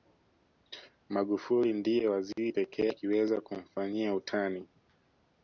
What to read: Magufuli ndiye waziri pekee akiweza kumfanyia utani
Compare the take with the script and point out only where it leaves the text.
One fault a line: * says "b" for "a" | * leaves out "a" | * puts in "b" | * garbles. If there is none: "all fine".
all fine